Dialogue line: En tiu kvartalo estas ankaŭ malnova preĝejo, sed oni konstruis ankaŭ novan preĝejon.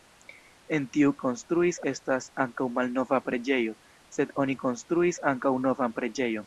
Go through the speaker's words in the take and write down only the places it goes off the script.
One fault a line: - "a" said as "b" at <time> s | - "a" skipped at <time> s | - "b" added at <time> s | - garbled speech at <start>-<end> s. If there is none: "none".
- "kvartalo" said as "konstruis" at 1.2 s